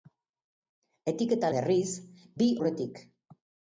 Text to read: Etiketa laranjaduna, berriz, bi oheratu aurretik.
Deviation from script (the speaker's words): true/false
true